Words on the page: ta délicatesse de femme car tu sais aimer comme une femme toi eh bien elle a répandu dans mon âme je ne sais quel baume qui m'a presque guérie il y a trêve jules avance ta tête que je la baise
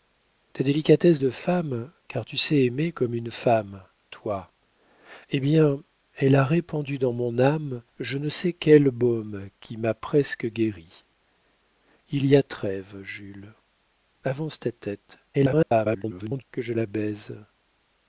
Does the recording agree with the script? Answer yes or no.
no